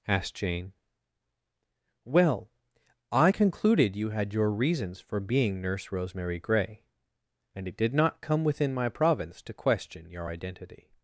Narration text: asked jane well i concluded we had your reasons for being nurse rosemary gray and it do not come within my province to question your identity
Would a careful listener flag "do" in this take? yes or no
yes